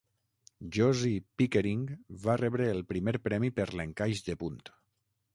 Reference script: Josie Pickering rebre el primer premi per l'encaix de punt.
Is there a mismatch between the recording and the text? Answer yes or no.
yes